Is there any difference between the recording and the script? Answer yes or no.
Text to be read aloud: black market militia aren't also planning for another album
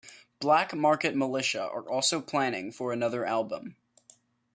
yes